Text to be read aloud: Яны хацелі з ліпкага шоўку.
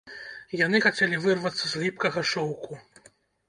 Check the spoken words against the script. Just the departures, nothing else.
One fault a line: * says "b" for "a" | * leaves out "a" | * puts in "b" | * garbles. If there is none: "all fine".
* puts in "вырвацца"